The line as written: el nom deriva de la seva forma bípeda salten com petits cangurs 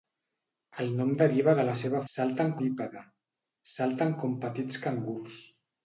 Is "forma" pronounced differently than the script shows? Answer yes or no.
yes